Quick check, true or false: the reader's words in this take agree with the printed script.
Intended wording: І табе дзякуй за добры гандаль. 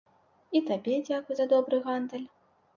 true